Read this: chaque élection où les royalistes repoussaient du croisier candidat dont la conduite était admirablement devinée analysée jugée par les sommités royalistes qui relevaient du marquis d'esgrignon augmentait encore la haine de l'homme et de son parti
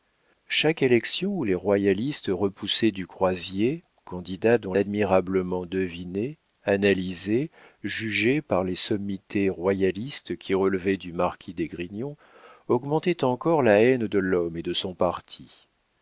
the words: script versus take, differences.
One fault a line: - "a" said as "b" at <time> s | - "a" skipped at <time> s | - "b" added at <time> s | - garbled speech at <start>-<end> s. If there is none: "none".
- "la conduite était" skipped at 4.7 s